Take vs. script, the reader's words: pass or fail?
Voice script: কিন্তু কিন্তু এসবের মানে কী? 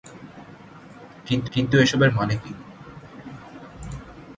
pass